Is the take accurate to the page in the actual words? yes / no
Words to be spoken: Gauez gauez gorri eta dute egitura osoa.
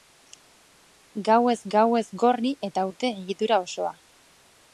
yes